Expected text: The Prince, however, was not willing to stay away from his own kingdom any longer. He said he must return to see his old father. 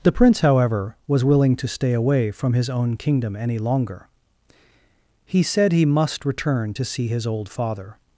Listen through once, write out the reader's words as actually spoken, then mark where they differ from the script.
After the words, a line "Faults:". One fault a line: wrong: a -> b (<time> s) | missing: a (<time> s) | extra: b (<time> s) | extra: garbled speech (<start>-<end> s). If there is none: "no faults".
The Prince, however, was willing to stay away from his own kingdom any longer. He said he must return to see his old father.
Faults:
missing: not (1.2 s)